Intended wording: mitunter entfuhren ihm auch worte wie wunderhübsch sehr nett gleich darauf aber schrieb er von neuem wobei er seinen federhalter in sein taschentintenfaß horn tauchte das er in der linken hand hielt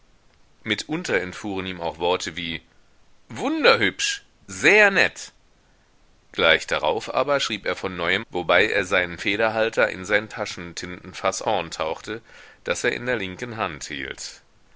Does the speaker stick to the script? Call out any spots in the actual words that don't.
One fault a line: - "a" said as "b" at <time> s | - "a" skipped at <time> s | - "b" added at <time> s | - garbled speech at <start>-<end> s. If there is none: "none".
none